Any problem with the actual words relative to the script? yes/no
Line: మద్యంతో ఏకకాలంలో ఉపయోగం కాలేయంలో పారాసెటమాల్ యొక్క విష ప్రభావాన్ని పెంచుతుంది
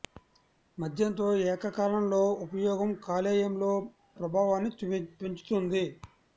yes